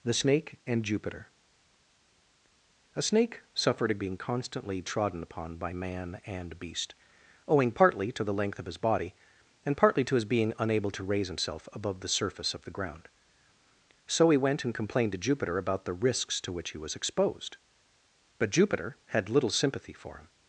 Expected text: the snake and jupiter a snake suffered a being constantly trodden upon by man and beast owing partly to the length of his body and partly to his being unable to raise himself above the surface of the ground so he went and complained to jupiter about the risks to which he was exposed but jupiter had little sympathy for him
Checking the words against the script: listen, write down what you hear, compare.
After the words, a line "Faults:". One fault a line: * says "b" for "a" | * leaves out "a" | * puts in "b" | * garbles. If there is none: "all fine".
the snake and jupiter a snake suffered a being constantly trodden upon by man and beast owing partly to the length of his body and partly to his being unable to raise himself above the surface of the ground so he went and complained to jupiter about the risks to which he was exposed but jupiter had little sympathy for him
Faults:
all fine